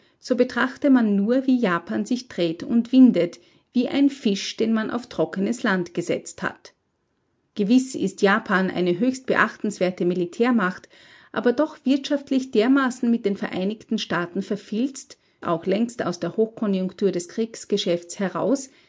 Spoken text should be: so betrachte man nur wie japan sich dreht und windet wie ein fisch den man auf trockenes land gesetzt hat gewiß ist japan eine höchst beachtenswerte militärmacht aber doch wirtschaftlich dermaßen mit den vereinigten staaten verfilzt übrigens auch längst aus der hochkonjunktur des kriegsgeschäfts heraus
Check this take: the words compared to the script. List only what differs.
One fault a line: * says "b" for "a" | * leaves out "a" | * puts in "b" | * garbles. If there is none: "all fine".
* leaves out "übrigens"